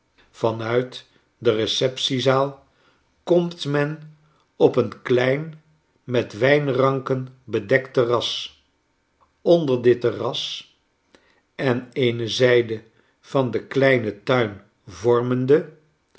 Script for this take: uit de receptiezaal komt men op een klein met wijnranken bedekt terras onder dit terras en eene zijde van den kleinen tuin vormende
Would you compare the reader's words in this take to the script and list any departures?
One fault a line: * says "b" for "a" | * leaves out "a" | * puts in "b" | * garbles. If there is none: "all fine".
all fine